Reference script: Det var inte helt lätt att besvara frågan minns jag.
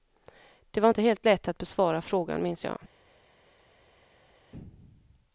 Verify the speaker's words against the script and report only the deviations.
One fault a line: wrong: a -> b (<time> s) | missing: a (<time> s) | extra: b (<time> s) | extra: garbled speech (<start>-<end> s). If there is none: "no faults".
no faults